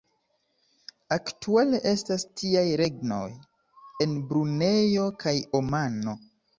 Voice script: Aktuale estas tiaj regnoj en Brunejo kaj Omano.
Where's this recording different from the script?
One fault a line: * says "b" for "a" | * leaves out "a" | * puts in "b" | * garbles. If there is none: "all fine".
all fine